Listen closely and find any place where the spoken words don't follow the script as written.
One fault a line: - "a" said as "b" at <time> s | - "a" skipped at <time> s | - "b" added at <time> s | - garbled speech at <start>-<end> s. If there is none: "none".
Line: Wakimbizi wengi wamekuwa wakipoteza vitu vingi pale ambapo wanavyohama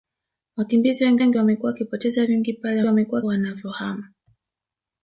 - "wengi" added at 1.2 s
- "vitu" skipped at 2.3 s
- "ambapo" said as "wamekuwa" at 2.9 s